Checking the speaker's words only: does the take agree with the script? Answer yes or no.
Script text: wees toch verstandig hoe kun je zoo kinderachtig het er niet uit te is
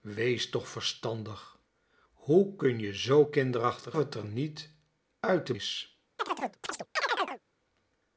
yes